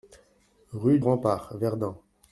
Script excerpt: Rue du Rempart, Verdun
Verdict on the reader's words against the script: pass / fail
fail